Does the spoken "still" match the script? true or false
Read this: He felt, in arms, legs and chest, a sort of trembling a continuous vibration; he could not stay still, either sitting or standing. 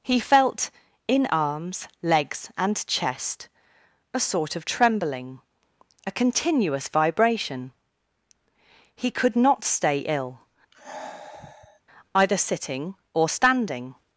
false